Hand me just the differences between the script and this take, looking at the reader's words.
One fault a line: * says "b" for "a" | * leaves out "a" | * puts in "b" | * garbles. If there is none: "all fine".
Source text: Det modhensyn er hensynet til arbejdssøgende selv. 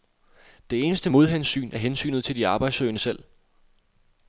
* puts in "eneste"
* puts in "de"